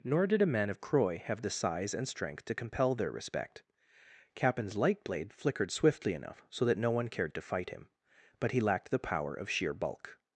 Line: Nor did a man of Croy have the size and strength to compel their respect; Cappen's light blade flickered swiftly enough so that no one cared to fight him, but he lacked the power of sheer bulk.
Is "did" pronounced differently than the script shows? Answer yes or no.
no